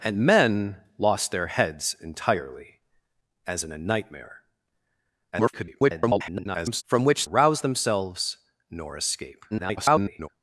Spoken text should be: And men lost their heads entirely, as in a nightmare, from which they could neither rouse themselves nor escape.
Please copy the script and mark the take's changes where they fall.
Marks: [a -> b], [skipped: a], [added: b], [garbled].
And men lost their heads entirely, as in a nightmare, [garbled] from which [skipped: they could neither] rouse themselves nor escape. [garbled]